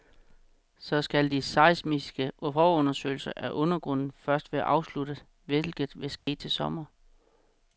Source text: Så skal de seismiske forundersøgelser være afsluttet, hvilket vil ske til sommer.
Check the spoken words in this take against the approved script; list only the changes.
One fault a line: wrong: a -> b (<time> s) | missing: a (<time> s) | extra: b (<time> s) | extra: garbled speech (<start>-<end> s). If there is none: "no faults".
extra: af undergrunden først (3.4 s)